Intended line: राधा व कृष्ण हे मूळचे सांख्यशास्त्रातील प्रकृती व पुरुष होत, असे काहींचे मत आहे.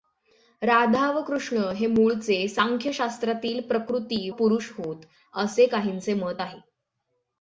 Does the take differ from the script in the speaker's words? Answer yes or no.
yes